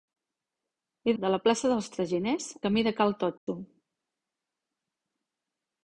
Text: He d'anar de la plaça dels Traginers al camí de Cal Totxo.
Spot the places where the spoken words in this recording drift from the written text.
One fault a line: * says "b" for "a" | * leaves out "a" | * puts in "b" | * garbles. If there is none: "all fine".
* leaves out "d'anar"
* leaves out "al"